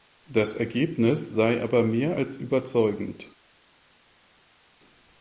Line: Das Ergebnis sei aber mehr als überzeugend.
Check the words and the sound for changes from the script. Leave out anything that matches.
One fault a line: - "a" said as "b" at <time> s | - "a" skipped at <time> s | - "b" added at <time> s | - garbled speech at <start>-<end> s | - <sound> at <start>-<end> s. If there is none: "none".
none